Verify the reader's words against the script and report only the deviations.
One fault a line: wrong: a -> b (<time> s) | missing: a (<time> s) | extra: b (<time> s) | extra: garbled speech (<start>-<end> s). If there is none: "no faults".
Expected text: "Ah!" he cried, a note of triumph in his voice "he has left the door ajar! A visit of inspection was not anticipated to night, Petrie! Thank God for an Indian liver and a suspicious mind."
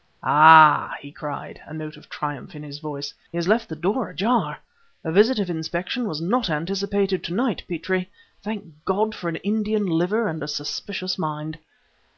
no faults